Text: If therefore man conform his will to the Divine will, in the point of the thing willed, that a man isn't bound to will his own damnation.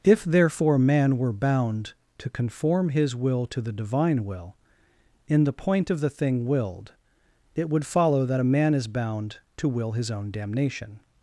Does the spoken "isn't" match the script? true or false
false